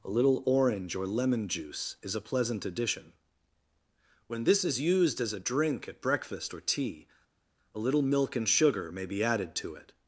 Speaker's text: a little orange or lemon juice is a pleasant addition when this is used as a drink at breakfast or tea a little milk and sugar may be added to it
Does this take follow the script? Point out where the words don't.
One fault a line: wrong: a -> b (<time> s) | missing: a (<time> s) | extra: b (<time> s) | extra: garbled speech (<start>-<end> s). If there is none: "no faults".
no faults